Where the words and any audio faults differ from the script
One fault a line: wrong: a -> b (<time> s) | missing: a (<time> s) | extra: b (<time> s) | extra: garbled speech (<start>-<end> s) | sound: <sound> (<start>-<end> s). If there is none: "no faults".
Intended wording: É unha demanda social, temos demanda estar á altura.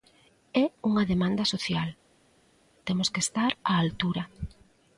wrong: demanda -> que (3.1 s)